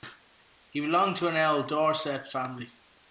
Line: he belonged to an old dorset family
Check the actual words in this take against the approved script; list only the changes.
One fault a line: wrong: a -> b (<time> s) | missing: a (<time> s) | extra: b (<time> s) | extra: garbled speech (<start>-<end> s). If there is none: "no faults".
no faults